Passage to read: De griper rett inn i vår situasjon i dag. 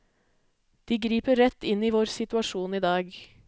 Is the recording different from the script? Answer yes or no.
no